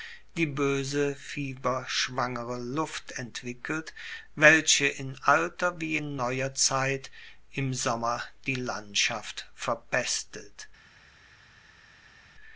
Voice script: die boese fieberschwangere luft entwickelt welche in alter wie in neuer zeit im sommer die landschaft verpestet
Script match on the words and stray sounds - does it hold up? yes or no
yes